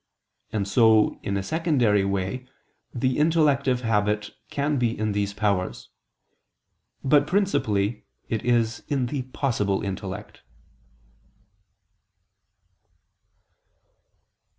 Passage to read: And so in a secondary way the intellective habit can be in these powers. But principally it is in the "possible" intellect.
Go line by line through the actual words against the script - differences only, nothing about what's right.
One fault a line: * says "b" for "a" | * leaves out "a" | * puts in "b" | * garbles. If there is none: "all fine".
all fine